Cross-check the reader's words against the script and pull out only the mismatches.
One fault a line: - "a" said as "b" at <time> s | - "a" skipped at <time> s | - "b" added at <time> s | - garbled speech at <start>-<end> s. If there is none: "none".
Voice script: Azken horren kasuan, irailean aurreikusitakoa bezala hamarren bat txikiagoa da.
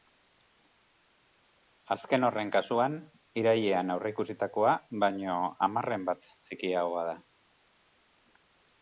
- "bezala" said as "baino" at 5.1 s